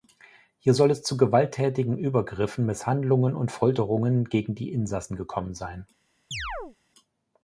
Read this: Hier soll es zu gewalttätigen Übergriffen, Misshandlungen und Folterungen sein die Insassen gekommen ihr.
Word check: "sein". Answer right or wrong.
wrong